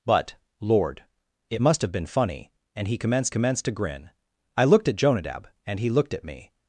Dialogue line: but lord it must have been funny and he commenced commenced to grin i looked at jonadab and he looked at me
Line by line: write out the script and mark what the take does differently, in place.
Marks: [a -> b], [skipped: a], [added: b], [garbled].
but lord it must have been funny and he commenced commenced to grin i looked at jonadab and he looked at me